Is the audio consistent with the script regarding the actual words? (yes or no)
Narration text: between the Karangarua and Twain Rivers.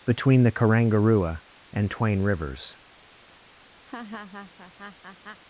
yes